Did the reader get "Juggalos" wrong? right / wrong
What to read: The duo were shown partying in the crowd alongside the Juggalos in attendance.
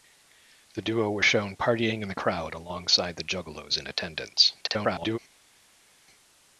right